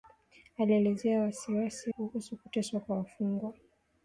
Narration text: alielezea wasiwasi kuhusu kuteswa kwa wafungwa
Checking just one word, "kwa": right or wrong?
right